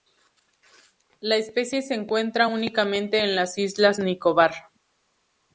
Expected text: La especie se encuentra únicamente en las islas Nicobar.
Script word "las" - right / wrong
right